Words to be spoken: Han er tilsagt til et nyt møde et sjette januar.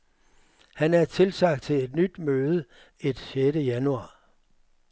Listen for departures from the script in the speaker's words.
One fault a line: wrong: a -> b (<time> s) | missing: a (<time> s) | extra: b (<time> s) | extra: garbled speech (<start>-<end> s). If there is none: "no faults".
no faults